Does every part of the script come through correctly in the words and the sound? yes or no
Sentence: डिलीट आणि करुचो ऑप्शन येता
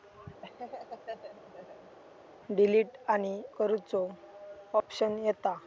no